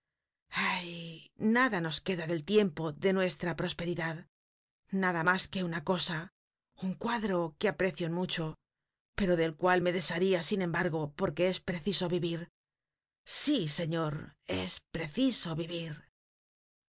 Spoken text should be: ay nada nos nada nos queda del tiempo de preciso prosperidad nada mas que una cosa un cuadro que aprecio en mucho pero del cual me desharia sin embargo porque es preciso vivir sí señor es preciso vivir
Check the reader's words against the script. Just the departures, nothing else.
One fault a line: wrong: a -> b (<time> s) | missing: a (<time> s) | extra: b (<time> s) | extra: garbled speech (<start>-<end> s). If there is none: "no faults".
missing: nada nos (2.0 s)
wrong: preciso -> nuestra (3.2 s)